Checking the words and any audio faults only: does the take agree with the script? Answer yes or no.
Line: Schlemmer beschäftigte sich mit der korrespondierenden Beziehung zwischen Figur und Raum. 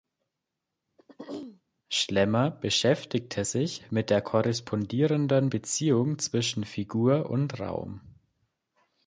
no